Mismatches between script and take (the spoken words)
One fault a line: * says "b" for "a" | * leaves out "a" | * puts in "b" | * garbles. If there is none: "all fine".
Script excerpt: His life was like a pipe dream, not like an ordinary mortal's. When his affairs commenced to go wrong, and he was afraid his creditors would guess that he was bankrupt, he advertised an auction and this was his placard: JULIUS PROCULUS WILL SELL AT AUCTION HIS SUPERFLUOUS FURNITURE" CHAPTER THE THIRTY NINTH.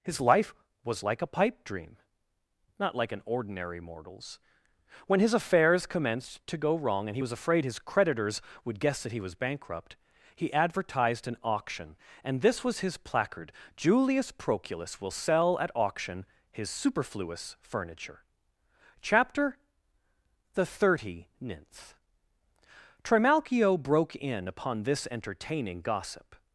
* puts in "Trimalchio broke in upon this entertaining gossip"